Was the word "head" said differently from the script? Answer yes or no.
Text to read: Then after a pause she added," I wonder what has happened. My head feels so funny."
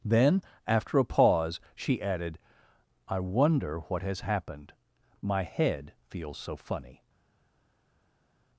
no